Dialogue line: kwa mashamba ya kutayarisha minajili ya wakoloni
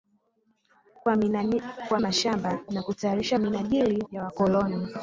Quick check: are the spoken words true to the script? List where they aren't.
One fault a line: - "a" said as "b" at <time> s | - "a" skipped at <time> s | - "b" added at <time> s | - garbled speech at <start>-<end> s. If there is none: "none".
none